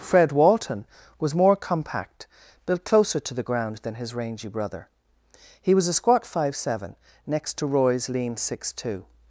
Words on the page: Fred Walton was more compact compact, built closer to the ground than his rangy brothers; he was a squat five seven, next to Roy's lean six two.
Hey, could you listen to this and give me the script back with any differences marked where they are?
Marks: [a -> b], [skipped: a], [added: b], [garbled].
Fred Walton was more compact [skipped: compact,] built closer to the ground than his rangy [brothers; -> brother] he was a squat five seven, next to Roy's lean six two.